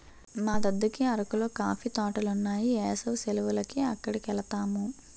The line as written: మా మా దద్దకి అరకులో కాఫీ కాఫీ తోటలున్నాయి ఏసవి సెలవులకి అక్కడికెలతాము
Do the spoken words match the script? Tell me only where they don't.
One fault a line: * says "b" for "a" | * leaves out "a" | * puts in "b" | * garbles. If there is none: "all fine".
* leaves out "మా"
* leaves out "కాఫీ"